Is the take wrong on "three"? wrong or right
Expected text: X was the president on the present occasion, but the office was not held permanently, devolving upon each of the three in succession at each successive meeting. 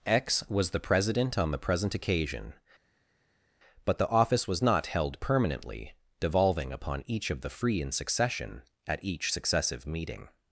wrong